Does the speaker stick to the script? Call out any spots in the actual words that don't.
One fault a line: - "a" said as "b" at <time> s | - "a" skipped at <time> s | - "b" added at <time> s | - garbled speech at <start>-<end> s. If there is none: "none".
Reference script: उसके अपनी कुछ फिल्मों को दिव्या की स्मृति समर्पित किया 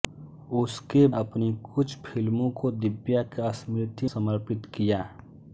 none